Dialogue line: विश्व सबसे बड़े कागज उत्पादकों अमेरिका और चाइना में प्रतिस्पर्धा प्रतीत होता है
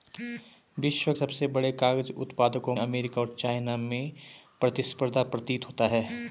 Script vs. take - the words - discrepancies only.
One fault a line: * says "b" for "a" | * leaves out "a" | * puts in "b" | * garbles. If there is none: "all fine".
all fine